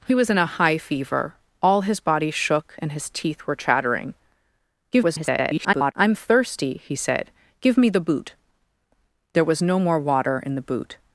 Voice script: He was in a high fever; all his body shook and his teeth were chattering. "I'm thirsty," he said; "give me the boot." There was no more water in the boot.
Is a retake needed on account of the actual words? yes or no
yes